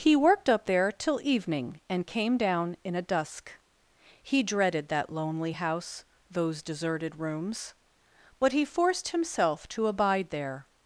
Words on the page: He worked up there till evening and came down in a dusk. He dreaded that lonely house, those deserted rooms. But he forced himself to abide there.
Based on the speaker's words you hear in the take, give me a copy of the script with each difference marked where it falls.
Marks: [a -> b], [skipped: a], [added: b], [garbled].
He worked up there till evening and came down in a dusk. He dreaded that lonely house, those deserted rooms. But he forced himself to abide there.